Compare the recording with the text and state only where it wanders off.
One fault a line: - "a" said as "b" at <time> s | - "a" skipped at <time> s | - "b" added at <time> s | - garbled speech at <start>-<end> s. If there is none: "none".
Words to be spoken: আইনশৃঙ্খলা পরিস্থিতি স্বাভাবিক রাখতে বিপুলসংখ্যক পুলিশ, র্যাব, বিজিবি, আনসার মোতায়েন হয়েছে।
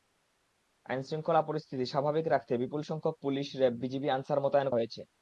none